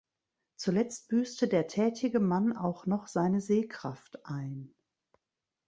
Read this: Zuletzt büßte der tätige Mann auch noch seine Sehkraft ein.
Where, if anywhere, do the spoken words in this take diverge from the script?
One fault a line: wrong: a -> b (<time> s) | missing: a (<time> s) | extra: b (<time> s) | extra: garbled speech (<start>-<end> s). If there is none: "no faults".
no faults